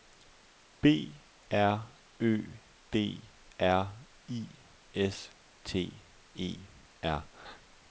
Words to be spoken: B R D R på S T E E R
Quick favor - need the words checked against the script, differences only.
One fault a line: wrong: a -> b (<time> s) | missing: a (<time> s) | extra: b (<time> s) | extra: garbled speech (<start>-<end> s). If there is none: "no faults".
extra: Ø (2.2 s)
wrong: på -> I (4.3 s)
missing: E (6.7 s)